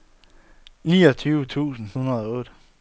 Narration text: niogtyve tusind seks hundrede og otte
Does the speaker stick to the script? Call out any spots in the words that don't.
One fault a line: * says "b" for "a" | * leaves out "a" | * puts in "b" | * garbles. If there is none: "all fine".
* leaves out "seks"